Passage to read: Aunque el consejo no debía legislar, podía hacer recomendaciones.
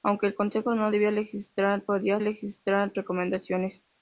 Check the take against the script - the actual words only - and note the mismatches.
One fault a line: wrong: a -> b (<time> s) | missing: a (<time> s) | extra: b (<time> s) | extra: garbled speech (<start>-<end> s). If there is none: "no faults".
wrong: hacer -> legislar (2.2 s)